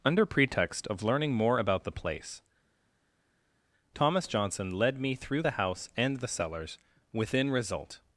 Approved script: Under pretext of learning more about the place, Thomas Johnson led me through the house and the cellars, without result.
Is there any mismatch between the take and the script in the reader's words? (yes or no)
yes